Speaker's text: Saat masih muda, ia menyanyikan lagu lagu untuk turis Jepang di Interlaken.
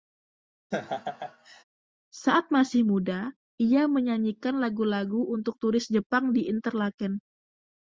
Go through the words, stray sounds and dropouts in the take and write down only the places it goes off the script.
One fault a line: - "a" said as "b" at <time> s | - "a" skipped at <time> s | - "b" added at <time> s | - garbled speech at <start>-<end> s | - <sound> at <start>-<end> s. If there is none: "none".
- laugh at 0.7-1.6 s